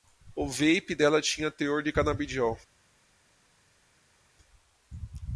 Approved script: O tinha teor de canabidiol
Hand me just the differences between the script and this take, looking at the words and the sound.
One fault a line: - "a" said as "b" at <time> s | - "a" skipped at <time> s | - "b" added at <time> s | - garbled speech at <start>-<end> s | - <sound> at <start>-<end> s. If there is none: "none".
- "vape dela" added at 0.5 s